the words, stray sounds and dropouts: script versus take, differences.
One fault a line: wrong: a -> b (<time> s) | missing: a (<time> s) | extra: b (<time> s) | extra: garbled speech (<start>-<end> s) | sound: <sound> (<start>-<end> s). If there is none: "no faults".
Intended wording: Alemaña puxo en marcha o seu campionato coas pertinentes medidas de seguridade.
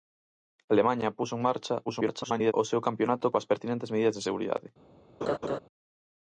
extra: garbled speech (1.9-2.5 s)
sound: laugh (5.2-5.6 s)